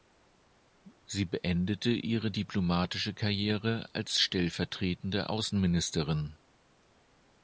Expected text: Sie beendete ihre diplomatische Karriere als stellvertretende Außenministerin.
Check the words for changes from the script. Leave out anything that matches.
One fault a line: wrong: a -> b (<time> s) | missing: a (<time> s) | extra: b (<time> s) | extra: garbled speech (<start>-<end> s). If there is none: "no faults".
no faults